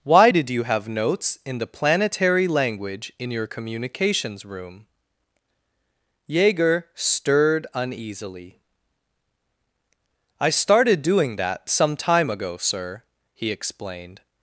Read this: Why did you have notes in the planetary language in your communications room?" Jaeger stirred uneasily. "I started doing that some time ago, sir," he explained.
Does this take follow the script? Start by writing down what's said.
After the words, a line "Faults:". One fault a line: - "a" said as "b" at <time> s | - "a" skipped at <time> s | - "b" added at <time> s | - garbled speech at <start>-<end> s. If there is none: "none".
Why did you have notes in the planetary language in your communications room?" Jaeger stirred uneasily. "I started doing that some time ago, sir," he explained.
Faults:
none